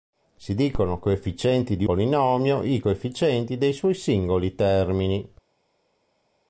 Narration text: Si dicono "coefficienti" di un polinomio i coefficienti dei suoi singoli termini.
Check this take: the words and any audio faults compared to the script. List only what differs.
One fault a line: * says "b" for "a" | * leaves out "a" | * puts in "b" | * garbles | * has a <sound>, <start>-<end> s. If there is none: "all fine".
* leaves out "un"